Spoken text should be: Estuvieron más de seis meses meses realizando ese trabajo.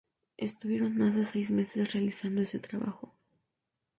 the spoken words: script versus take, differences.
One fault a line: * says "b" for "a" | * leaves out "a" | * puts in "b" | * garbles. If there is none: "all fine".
* leaves out "meses"